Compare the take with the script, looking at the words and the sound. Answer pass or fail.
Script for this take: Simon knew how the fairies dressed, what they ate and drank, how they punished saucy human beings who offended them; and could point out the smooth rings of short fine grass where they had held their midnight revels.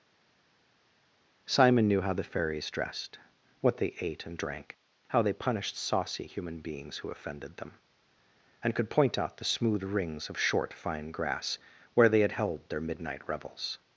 pass